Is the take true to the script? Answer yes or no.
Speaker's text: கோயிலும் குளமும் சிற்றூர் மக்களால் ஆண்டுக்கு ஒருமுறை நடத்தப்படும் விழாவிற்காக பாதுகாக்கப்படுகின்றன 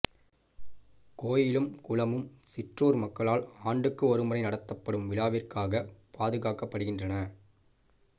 yes